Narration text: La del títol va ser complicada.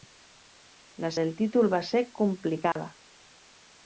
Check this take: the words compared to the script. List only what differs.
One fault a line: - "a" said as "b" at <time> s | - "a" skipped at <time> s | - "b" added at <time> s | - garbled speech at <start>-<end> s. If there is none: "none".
none